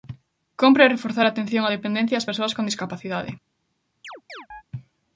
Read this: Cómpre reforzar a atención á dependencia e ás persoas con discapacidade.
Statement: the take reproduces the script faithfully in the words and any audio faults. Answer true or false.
false